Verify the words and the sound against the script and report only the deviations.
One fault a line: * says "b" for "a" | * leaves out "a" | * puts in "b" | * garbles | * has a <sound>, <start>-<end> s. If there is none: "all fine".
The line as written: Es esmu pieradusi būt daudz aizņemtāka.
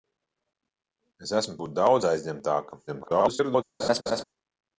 * leaves out "pieradusi"
* garbles
* has a laugh, 3.8-4.2 s